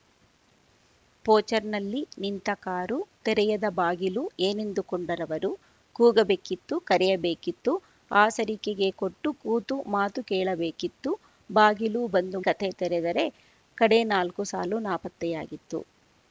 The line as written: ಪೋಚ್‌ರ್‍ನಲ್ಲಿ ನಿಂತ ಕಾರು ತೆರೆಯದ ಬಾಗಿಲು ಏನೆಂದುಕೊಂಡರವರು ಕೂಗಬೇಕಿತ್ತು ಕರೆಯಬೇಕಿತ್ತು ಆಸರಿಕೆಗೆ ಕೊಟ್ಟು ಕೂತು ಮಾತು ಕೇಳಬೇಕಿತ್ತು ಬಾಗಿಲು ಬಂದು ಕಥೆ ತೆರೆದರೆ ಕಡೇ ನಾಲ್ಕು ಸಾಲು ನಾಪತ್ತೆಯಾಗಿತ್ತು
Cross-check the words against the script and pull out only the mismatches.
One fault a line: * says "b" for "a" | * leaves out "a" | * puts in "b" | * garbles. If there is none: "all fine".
all fine